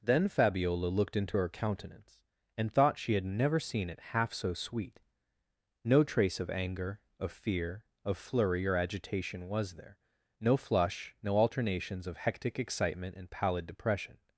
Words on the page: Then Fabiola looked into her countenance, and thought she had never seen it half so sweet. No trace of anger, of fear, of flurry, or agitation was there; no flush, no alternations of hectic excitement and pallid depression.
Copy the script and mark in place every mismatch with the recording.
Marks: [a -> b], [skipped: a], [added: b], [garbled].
Then Fabiola looked into her countenance, and thought she had never seen it half so sweet. No trace of anger, of fear, of flurry, or agitation was there; no flush, no alternations of hectic excitement and pallid depression.